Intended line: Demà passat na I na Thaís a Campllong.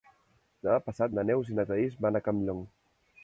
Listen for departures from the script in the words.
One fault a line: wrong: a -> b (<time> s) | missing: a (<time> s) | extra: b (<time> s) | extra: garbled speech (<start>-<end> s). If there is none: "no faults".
extra: Neus (1.3 s)
extra: van (2.1 s)